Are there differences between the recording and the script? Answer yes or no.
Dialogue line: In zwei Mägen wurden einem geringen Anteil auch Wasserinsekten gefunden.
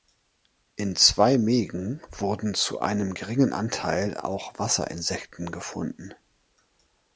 yes